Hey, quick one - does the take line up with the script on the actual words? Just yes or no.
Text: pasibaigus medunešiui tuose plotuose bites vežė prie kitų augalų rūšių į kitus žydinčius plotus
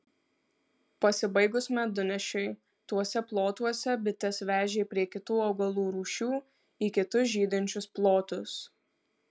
yes